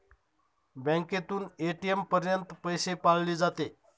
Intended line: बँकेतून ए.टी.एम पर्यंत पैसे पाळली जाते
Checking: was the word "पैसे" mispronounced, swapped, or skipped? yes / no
no